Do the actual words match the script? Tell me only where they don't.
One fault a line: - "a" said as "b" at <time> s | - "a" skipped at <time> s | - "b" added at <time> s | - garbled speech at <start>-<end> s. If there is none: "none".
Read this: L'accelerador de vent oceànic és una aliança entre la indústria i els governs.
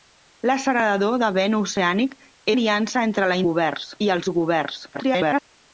- "és una" skipped at 2.2 s
- "indústria" said as "governs" at 3.5 s
- garbled speech at 4.9-5.4 s